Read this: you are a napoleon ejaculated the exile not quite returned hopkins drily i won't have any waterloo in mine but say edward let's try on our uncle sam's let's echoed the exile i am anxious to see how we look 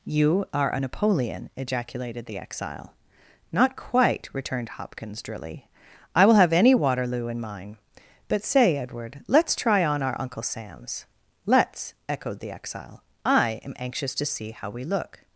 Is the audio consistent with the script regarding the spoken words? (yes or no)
no